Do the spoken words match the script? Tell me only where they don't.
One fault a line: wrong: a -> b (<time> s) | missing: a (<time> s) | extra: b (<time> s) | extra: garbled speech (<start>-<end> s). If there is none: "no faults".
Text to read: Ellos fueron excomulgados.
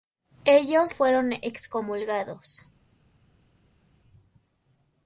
no faults